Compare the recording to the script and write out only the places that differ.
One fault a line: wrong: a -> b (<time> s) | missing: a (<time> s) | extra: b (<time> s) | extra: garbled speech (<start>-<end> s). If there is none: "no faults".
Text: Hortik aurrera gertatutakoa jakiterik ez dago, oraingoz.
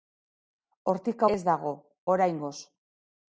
missing: aurrera gertatutakoa jakiterik (1.2 s)